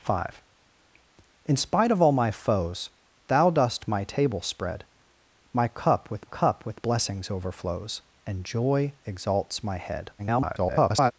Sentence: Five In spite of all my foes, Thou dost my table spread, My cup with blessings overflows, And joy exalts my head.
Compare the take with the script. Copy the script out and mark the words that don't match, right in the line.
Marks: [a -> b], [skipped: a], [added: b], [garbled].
Five In spite of all my foes, Thou dost my table spread, My cup with [added: cup with] blessings overflows, And joy exalts my head. [garbled]